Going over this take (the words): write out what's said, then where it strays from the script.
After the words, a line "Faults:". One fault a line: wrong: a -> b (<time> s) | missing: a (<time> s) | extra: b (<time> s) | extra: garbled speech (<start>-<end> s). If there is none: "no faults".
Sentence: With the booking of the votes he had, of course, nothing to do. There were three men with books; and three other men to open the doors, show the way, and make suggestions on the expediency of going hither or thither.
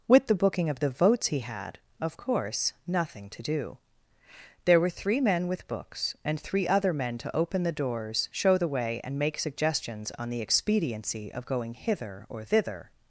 With the booking of the votes he had, of course, nothing to do. There were three men with books; and three other men to open the doors, show the way, and make suggestions on the expediency of going hither or thither.
Faults:
no faults